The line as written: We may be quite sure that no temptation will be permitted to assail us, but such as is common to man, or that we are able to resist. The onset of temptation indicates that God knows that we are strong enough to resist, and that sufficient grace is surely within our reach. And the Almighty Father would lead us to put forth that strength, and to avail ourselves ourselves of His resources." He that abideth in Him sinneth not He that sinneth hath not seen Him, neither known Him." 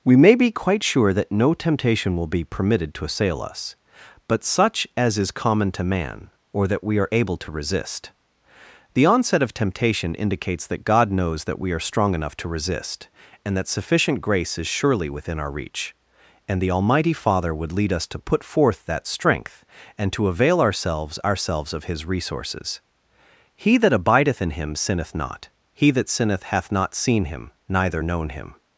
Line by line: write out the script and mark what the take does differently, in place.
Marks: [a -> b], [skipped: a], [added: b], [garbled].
We may be quite sure that no temptation will be permitted to assail us, but such as is common to man, or that we are able to resist. The onset of temptation indicates that God knows that we are strong enough to resist, and that sufficient grace is surely within our reach. And the Almighty Father would lead us to put forth that strength, and to avail ourselves ourselves of His resources." He that abideth in Him sinneth not He that sinneth hath not seen Him, neither known Him."